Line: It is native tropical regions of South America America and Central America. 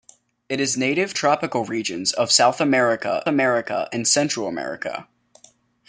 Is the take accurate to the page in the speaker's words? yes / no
yes